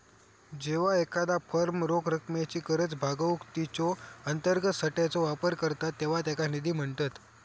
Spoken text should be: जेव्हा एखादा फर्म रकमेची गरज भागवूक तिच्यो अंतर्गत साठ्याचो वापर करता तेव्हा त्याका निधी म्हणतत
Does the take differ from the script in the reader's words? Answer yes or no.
yes